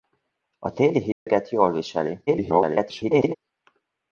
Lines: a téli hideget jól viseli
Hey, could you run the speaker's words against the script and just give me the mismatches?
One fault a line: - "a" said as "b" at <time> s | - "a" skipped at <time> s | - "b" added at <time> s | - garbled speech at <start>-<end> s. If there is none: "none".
- garbled speech at 2.3-3.3 s